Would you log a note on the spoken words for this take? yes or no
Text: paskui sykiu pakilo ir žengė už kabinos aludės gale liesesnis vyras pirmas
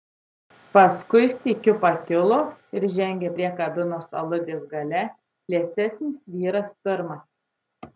yes